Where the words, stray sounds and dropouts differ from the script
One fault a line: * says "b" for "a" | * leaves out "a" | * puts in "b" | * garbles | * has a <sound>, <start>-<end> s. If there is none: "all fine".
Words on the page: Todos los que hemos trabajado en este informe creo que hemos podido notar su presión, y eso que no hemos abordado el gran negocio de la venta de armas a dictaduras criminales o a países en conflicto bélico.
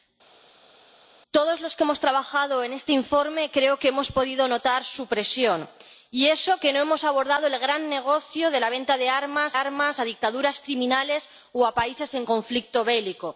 * puts in "armas"